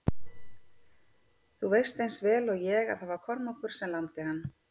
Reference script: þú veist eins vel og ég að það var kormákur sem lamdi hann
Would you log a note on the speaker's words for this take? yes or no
no